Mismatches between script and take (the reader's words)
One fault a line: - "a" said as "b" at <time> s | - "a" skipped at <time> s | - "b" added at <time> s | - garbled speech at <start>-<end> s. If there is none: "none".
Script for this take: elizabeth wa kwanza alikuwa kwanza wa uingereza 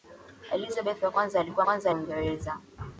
none